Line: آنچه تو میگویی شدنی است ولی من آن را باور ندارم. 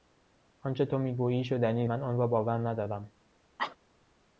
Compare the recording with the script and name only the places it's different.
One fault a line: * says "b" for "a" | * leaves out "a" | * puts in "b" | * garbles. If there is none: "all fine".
* leaves out "است ولی"